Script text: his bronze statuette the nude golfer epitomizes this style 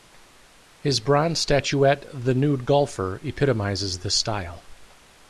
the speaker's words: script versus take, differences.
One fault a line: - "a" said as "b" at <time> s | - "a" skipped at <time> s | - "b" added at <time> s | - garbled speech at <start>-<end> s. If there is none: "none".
none